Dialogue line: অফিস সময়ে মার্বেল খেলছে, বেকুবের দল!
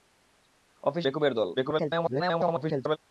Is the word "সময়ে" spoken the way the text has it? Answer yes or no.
no